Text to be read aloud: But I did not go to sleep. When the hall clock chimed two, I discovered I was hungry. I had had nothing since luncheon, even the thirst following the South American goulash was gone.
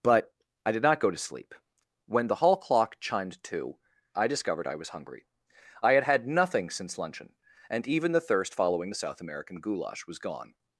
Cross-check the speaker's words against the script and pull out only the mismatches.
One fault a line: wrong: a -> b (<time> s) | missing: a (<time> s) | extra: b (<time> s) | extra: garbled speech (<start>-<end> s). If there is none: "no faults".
extra: and (7.7 s)